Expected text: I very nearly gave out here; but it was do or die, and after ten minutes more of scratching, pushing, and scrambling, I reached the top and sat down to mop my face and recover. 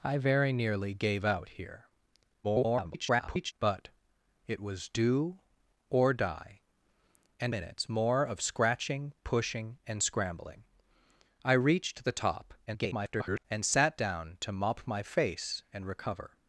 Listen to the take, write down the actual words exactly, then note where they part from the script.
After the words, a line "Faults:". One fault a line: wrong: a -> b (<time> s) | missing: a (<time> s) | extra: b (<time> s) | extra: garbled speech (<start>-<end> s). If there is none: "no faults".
I very nearly gave out here; [garbled] but it was do or die, and minutes more of scratching, pushing, and scrambling, I reached the top [garbled] and sat down to mop my face and recover.
Faults:
extra: garbled speech (2.4-3.5 s)
missing: after ten (7.5 s)
extra: garbled speech (12.7-13.4 s)